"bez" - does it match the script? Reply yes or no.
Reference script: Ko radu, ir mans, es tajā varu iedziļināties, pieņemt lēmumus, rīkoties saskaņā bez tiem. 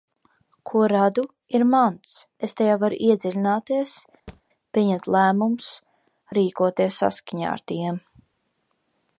no